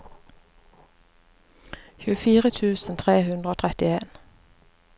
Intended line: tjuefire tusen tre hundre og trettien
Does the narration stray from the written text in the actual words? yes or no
no